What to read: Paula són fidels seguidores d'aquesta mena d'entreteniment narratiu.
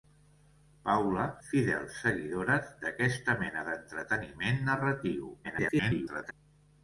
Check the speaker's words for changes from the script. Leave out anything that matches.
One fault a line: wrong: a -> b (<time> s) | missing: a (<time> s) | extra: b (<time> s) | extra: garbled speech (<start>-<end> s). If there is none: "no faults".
missing: són (1.2 s)
extra: garbled speech (5.4-6.3 s)